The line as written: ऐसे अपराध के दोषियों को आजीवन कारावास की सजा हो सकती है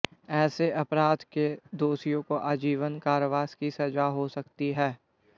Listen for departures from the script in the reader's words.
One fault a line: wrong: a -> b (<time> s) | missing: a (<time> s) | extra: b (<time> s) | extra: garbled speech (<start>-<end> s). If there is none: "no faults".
no faults